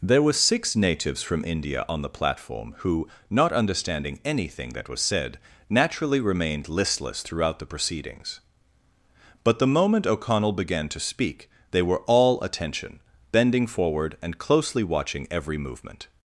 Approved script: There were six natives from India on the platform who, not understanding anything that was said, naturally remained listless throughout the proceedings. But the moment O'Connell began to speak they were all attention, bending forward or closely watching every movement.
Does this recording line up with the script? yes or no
no